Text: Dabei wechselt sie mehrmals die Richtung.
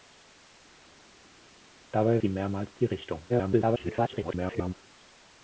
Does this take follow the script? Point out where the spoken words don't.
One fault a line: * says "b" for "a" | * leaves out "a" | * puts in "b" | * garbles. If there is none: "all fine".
* leaves out "wechselt"
* garbles